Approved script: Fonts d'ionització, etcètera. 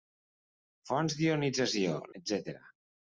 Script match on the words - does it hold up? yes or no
yes